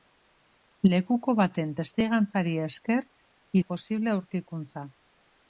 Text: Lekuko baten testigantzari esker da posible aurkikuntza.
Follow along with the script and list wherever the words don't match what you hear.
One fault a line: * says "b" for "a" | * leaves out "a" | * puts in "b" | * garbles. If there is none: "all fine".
all fine